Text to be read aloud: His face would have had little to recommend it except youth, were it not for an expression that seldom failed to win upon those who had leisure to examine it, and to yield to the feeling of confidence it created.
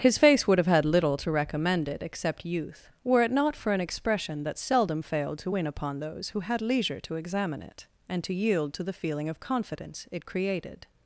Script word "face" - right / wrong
right